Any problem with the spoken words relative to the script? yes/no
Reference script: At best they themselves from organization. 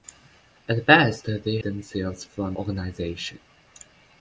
no